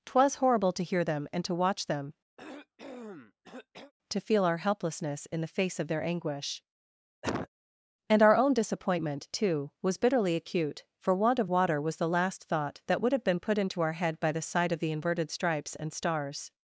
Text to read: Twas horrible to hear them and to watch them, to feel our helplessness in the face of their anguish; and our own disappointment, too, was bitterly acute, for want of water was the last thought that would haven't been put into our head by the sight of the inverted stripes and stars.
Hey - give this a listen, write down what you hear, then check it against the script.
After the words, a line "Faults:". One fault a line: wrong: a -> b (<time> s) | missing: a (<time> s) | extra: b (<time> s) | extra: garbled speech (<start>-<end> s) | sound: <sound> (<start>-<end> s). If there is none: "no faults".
Twas horrible to hear them and to watch them, to feel our helplessness in the face of their anguish; and our own disappointment, too, was bitterly acute, for want of water was the last thought that would have been put into our head by the sight of the inverted stripes and stars.
Faults:
sound: cough (2.4-3.9 s)
sound: cough (7.2-7.5 s)
wrong: haven't -> have (13.1 s)